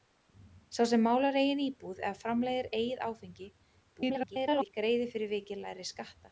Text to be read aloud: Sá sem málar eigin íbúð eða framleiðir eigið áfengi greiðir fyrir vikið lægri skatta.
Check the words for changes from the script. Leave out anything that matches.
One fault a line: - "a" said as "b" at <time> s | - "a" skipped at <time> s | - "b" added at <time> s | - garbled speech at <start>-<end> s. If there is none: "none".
- garbled speech at 3.9-4.7 s